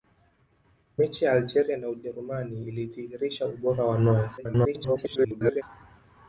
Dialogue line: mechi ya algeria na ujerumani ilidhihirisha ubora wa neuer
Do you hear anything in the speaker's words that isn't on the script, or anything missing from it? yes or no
yes